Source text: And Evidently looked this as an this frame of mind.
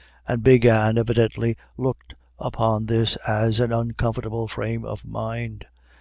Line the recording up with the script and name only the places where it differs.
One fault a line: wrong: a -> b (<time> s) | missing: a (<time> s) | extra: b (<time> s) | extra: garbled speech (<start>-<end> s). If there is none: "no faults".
extra: Big Anne (0.4 s)
extra: upon (2.4 s)
wrong: this -> uncomfortable (3.7 s)